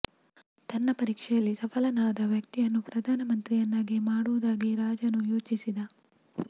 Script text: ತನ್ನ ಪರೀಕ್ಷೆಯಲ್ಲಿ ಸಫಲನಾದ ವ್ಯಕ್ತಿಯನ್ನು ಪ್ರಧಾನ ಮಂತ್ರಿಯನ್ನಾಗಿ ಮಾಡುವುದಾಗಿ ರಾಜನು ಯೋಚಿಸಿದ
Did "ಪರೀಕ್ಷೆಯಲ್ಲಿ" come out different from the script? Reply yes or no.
no